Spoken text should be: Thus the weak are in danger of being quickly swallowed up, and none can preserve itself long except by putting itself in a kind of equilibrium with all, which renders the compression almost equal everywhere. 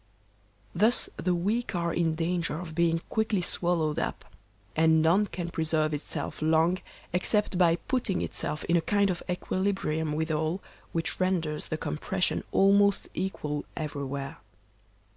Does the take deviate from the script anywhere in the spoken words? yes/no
no